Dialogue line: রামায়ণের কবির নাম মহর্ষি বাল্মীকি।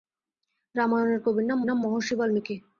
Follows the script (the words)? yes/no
no